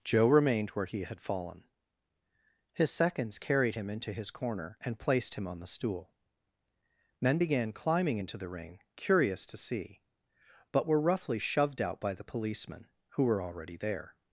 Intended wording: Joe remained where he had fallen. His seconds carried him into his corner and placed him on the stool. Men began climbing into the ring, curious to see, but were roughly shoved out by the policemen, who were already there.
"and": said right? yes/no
yes